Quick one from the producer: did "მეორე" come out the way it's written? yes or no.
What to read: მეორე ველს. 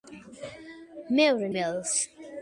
yes